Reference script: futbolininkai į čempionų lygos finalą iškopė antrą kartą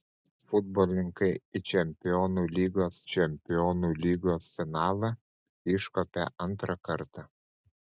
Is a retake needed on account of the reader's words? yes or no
yes